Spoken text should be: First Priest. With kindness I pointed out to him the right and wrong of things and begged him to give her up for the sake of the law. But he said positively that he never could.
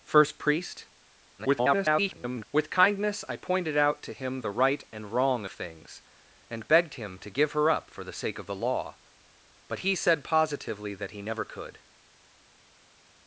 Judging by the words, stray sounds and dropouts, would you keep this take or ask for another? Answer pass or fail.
fail